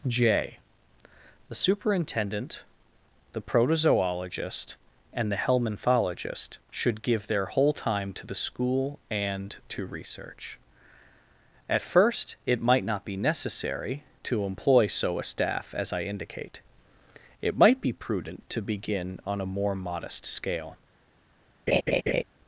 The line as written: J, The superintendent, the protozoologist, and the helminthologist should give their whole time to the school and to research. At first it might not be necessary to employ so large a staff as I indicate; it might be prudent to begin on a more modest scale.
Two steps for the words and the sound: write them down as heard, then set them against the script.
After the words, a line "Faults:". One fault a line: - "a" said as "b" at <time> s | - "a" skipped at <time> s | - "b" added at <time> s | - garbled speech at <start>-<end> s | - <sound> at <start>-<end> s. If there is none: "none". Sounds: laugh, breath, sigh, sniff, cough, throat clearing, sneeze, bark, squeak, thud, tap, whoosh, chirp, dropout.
J, The superintendent, the protozoologist, and the helminthologist should give their whole time to the school and to research. At first it might not be necessary to employ so a staff as I indicate; it might be prudent to begin on a more modest scale.
Faults:
- "large" skipped at 15.2 s
- laugh at 21.7-22.2 s